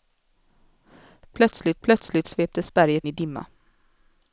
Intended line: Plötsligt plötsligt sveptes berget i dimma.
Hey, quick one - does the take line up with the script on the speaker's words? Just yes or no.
yes